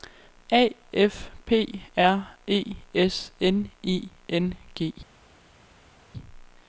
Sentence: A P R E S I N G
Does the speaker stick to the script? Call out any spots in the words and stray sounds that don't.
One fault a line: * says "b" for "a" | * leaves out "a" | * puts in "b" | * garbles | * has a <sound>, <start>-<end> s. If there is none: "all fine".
* puts in "F"
* puts in "N"